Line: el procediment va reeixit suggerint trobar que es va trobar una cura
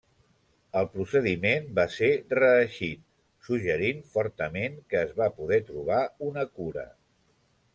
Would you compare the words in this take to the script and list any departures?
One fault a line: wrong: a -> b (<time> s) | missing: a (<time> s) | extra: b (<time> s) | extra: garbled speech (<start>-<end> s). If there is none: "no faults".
extra: ser (1.9 s)
wrong: trobar -> fortament (4.1 s)
extra: poder (5.4 s)